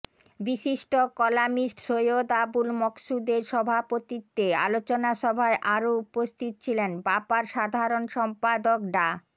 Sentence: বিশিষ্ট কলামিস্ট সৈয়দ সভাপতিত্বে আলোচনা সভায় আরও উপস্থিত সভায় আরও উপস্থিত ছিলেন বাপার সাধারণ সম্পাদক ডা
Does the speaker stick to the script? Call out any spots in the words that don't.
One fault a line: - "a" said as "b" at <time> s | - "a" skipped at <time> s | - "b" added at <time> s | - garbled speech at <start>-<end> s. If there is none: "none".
- "আবুল মকসুদের" added at 2.4 s
- "সভায় আরও উপস্থিত" skipped at 6.5 s